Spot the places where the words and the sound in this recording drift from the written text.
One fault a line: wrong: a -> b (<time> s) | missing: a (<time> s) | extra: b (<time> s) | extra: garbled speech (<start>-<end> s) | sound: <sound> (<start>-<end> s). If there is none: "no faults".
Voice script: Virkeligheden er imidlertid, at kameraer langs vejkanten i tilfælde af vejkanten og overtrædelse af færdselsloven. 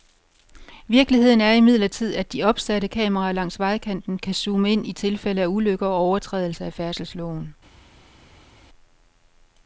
extra: de opsatte (2.3 s)
extra: kan zoome ind (4.2 s)
wrong: vejkanten -> ulykker (5.5 s)